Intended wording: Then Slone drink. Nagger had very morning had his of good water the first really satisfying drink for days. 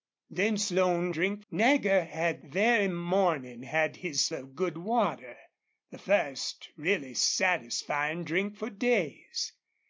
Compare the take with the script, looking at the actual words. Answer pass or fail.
pass